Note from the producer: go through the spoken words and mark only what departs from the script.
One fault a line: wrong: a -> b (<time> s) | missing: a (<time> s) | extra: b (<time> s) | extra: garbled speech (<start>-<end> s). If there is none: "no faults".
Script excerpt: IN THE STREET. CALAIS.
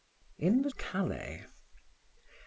missing: STREET (0.7 s)